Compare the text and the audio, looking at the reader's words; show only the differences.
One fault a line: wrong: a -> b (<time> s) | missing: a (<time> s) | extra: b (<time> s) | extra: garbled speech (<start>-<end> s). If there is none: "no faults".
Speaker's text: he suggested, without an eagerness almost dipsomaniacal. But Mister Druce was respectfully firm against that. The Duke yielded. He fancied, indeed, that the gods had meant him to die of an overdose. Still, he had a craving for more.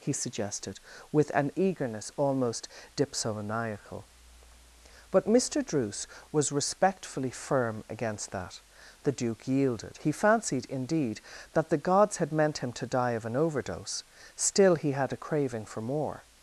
wrong: without -> with (1.1 s)